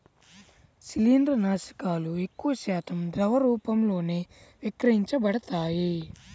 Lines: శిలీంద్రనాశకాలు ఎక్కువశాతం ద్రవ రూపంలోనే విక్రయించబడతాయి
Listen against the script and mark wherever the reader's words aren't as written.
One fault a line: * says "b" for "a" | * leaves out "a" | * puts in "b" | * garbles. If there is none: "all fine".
all fine